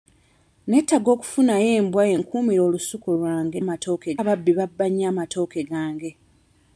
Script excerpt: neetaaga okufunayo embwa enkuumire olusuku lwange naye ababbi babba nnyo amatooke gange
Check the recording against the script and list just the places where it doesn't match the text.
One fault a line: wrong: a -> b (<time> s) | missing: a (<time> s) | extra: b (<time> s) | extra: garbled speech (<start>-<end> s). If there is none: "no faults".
wrong: naye -> amatooke (3.6 s)